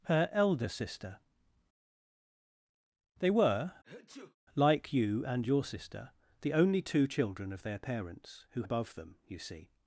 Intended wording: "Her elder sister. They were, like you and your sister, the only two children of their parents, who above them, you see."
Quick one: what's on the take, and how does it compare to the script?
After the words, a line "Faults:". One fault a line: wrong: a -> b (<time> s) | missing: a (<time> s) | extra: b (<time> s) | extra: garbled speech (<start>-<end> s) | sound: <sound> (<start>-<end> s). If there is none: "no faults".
"Her elder sister. They were, like you and your sister, the only two children of their parents, who above them, you see."
Faults:
sound: sneeze (3.8-4.4 s)